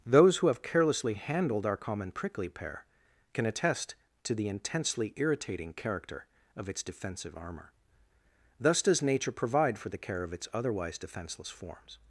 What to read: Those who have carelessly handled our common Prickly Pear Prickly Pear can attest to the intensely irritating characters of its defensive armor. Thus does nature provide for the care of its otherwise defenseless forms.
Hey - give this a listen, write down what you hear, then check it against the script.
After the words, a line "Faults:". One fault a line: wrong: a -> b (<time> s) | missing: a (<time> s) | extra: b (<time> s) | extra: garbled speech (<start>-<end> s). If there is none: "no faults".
Those who have carelessly handled our common Prickly Pear can attest to the intensely irritating character of its defensive armor. Thus does nature provide for the care of its otherwise defenseless forms.
Faults:
missing: Prickly Pear (2.9 s)
wrong: characters -> character (5.7 s)